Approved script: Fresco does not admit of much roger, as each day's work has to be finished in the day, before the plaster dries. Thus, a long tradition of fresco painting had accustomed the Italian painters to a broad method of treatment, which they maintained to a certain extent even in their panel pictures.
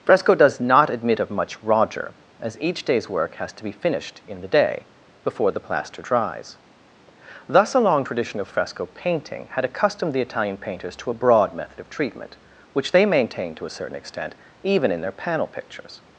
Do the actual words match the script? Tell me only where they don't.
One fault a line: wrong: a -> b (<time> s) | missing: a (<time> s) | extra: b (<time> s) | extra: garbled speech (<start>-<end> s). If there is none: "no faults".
no faults